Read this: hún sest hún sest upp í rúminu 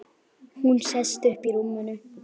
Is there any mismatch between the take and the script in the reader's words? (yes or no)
yes